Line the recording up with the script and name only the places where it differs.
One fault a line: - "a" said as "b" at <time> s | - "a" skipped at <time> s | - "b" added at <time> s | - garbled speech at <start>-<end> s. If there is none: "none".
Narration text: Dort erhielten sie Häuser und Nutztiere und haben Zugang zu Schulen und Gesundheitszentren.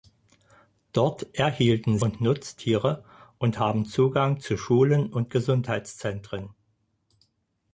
- "sie Häuser" skipped at 2.0 s